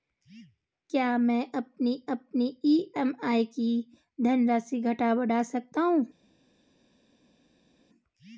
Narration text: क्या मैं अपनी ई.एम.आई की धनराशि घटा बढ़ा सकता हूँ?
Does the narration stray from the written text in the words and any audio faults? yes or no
yes